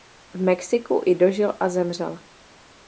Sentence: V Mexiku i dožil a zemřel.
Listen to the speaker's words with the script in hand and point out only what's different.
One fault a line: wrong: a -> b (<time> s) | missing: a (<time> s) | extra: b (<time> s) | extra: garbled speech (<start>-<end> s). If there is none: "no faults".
no faults